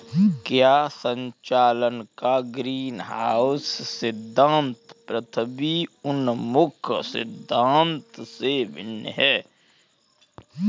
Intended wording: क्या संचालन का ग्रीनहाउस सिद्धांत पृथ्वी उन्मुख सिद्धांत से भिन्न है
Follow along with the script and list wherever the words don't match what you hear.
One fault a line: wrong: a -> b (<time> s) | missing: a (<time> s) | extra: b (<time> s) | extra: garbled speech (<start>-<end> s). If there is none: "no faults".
no faults